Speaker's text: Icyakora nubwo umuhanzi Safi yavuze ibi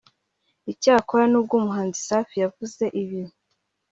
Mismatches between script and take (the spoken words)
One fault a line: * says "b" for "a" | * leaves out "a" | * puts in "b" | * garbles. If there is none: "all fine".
all fine